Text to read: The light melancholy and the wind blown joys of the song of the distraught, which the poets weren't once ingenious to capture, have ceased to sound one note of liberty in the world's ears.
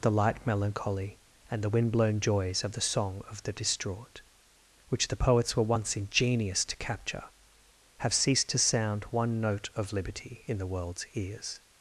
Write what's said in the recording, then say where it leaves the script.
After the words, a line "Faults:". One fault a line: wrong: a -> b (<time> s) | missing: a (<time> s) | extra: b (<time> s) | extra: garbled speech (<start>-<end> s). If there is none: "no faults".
The light melancholy and the wind blown joys of the song of the distraught, which the poets were once ingenious to capture, have ceased to sound one note of liberty in the world's ears.
Faults:
wrong: weren't -> were (5.6 s)